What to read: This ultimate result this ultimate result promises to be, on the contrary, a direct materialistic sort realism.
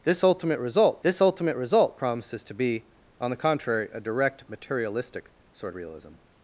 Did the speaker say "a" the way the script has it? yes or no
yes